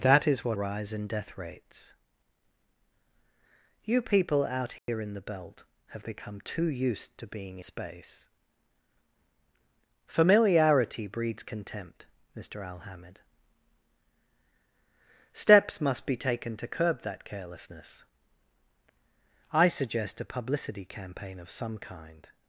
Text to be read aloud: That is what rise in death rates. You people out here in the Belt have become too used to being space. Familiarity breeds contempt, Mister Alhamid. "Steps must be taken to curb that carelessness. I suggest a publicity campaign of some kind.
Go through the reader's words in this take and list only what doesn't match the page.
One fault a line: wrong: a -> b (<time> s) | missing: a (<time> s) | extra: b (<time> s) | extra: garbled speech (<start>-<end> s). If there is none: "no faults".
no faults